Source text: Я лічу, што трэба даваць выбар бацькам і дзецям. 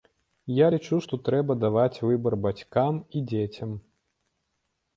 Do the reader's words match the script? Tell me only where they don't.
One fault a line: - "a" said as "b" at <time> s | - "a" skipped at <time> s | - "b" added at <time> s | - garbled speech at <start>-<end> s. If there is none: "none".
none